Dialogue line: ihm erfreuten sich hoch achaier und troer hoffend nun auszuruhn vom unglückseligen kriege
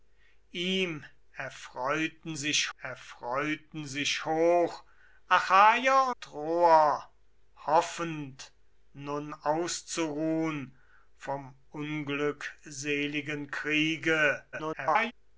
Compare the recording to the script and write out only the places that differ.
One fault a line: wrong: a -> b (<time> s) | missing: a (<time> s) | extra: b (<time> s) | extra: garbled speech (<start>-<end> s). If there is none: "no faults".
extra: erfreuten sich (2.8 s)
missing: und (6.1 s)
extra: garbled speech (14.5-15.1 s)